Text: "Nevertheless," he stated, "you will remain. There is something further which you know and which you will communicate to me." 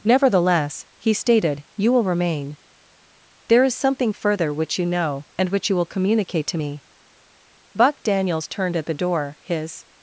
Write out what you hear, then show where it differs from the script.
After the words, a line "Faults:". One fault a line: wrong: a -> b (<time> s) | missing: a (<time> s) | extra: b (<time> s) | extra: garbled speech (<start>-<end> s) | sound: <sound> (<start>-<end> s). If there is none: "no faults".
"Nevertheless," he stated, "you will remain. There is something further which you know and which you will communicate to me." Buck Daniels turned at the door; his
Faults:
extra: Buck Daniels turned at the door his (7.7 s)